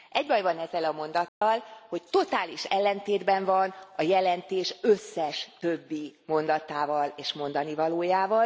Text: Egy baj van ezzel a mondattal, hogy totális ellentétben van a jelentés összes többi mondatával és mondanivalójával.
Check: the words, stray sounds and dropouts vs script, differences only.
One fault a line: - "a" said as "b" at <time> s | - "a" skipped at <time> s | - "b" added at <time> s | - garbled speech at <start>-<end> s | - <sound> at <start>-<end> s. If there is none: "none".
- dropout at 1.3-1.4 s